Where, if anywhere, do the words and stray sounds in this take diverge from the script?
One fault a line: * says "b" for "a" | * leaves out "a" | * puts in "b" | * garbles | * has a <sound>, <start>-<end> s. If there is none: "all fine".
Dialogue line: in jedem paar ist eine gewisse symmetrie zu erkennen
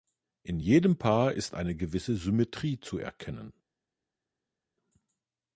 all fine